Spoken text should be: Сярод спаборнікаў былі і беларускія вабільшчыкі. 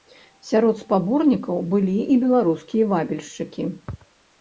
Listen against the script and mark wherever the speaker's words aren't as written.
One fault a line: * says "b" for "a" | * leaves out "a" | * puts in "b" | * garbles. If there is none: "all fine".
all fine